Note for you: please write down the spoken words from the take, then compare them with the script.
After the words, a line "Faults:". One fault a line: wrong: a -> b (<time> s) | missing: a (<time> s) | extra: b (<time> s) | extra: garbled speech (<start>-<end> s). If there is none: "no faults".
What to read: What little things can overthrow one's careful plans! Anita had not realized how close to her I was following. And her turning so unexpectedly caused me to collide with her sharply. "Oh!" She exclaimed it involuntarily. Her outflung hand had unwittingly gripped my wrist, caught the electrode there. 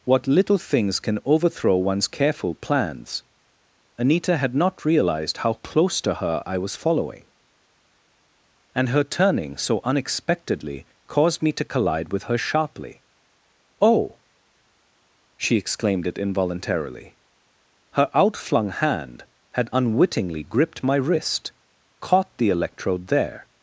What little things can overthrow one's careful plans! Anita had not realized how close to her I was following. And her turning so unexpectedly caused me to collide with her sharply. "Oh!" She exclaimed it involuntarily. Her outflung hand had unwittingly gripped my wrist, caught the electrode there.
Faults:
no faults